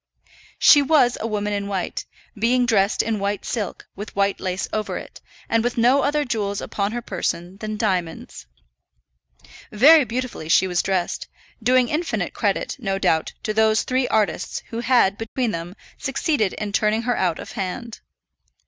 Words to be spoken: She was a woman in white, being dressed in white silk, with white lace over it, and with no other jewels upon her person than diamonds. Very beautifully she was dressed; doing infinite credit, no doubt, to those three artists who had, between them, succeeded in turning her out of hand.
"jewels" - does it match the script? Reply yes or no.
yes